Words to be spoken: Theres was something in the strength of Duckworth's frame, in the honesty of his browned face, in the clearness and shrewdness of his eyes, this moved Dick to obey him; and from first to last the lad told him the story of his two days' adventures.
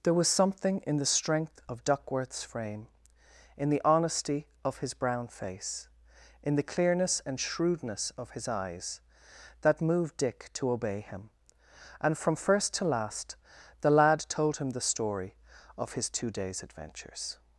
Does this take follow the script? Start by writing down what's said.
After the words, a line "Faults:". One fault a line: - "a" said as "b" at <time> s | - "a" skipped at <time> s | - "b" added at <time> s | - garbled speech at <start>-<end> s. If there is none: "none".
There was something in the strength of Duckworth's frame, in the honesty of his brown face, in the clearness and shrewdness of his eyes, that moved Dick to obey him; and from first to last the lad told him the story of his two days' adventures.
Faults:
- "Theres" said as "There" at 0.0 s
- "browned" said as "brown" at 4.9 s
- "this" said as "that" at 9.6 s